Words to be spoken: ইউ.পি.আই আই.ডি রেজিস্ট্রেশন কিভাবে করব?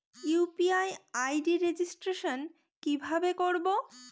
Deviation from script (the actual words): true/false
false